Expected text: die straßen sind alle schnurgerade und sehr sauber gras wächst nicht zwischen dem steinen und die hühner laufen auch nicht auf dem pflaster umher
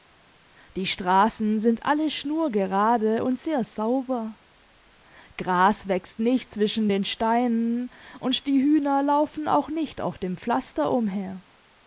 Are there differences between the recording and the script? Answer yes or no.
yes